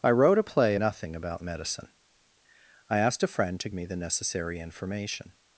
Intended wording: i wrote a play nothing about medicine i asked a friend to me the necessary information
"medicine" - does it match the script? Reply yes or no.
yes